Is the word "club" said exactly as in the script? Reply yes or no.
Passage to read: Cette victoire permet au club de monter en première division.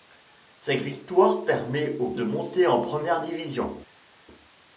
no